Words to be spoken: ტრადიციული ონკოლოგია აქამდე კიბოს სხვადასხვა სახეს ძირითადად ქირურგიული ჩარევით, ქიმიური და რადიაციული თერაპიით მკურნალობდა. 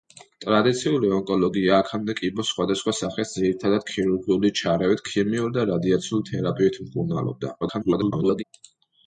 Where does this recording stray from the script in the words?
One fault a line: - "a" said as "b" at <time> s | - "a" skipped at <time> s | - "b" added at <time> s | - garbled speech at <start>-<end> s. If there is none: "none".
- garbled speech at 7.6-8.4 s